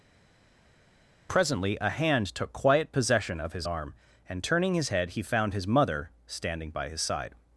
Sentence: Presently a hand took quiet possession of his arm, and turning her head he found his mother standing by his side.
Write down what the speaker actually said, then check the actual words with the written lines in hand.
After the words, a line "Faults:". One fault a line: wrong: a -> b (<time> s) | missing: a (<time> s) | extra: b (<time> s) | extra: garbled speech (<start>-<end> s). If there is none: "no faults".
Presently a hand took quiet possession of his arm, and turning his head he found his mother standing by his side.
Faults:
wrong: her -> his (4.8 s)